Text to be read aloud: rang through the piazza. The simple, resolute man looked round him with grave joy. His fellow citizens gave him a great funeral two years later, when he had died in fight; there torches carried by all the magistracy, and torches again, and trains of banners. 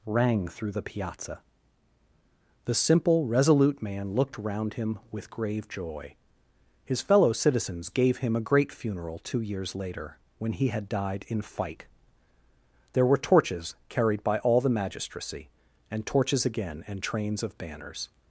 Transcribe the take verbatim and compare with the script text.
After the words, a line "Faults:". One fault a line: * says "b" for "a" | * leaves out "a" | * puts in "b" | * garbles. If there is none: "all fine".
rang through the piazza. The simple, resolute man looked round him with grave joy. His fellow citizens gave him a great funeral two years later, when he had died in fight; there were torches carried by all the magistracy, and torches again, and trains of banners.
Faults:
* puts in "were"